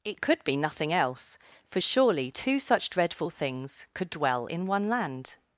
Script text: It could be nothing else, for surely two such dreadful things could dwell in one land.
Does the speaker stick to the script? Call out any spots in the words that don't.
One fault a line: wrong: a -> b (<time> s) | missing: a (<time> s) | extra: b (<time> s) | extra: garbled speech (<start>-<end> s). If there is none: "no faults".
no faults